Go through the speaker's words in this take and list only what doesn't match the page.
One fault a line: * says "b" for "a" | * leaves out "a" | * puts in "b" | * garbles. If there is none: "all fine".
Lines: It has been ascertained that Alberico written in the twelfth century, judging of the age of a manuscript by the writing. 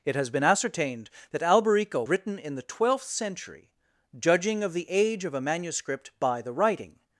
all fine